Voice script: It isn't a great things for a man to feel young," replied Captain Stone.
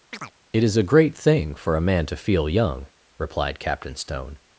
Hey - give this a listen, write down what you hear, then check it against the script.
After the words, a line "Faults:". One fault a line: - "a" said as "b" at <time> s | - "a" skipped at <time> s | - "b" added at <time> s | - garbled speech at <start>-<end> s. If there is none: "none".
It is a great thing for a man to feel young," replied Captain Stone.
Faults:
- "isn't" said as "is" at 0.6 s
- "things" said as "thing" at 1.2 s